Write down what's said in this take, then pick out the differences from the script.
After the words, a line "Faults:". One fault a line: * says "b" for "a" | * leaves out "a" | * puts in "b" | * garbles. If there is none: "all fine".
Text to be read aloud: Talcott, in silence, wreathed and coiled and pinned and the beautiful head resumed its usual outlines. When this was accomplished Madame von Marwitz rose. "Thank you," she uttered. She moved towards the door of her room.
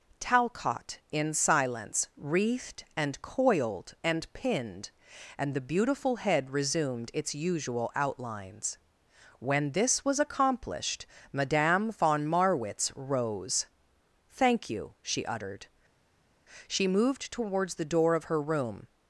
Talcott, in silence, wreathed and coiled and pinned and the beautiful head resumed its usual outlines. When this was accomplished Madame von Marwitz rose. "Thank you," she uttered. She moved towards the door of her room.
Faults:
all fine